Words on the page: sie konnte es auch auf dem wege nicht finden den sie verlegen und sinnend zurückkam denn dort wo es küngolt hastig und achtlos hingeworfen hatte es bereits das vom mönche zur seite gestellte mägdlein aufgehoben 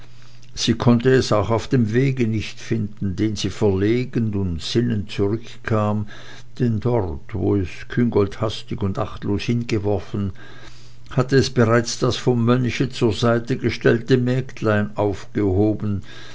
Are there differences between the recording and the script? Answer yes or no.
no